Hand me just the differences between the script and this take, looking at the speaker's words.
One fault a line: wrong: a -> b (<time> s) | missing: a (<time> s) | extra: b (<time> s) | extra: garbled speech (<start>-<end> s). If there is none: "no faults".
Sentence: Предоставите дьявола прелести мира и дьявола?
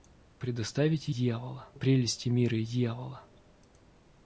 no faults